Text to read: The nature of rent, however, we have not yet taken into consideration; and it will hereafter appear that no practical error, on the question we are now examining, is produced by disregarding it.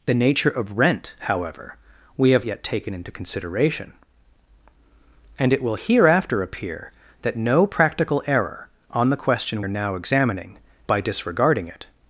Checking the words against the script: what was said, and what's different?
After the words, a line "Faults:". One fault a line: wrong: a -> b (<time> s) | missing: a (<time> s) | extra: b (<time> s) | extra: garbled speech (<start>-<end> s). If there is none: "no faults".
The nature of rent, however, we have yet taken into consideration; and it will hereafter appear that no practical error, on the question are now examining, by disregarding it.
Faults:
missing: not (2.5 s)
missing: we (9.6 s)
missing: is produced (10.6 s)